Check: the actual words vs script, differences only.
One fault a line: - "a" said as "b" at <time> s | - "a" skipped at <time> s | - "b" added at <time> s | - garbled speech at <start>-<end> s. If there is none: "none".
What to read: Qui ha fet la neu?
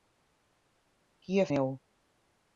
- "fet la" skipped at 1.5 s